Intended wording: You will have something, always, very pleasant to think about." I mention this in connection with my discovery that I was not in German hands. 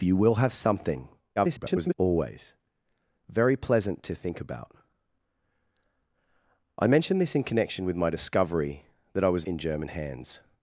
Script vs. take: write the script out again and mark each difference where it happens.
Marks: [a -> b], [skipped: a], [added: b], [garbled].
You will have something, [garbled] always, very pleasant to think about." I mention this in connection with my discovery that I was [skipped: not] in German hands.